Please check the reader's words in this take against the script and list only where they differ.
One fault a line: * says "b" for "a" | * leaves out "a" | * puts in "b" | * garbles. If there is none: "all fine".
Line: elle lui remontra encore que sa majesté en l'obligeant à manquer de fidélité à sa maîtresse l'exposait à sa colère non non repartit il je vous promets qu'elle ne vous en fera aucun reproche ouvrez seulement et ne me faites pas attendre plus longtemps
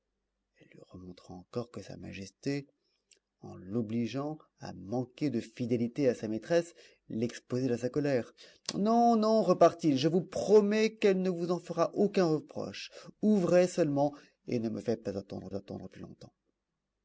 * puts in "attendre"